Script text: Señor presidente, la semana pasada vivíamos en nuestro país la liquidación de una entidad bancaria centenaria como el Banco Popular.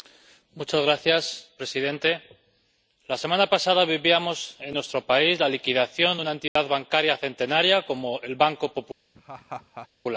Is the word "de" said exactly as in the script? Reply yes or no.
yes